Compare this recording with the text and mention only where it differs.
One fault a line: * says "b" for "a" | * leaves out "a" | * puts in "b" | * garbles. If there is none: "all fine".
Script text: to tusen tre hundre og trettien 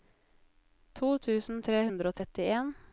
all fine